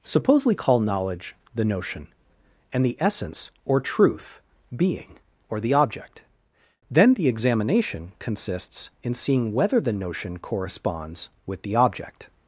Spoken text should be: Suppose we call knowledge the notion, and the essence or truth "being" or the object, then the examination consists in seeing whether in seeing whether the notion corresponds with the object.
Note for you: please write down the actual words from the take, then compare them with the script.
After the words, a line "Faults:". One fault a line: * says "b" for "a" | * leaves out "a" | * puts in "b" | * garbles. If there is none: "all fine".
Suppose we call knowledge the notion, and the essence or truth "being" or the object, then the examination consists in seeing whether the notion corresponds with the object.
Faults:
* leaves out "in seeing whether"